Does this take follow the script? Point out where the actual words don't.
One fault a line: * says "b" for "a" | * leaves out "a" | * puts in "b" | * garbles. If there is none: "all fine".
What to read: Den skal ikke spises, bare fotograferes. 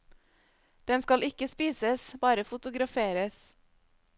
all fine